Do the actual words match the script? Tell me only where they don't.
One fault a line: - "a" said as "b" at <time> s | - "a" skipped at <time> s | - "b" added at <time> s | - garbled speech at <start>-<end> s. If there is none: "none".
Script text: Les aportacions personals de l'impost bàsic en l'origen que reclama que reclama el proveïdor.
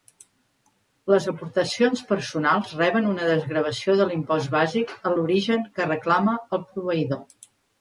- "reben una desgravació" added at 2.8 s
- "que reclama" skipped at 6.4 s